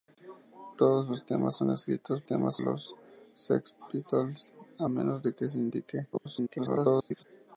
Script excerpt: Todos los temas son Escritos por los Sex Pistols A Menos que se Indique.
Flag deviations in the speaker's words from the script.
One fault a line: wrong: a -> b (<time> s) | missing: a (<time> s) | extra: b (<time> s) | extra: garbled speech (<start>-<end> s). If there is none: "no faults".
wrong: por -> temas (2.3 s)
extra: garbled speech (6.1-7.2 s)